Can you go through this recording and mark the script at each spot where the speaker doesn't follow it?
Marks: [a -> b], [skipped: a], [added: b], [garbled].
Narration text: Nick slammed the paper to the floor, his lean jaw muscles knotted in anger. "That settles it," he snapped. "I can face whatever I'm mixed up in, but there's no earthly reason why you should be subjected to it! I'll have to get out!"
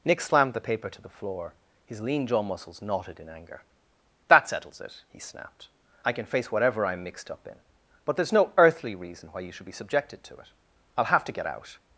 Nick slammed the paper to the floor, his lean jaw muscles knotted in anger. "That settles it," he snapped. "I can face whatever I'm mixed up in, but there's no earthly reason why you should be subjected to it! I'll have to get out!"